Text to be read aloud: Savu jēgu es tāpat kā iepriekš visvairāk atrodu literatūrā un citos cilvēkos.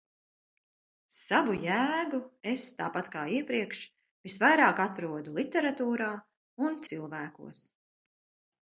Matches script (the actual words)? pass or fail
fail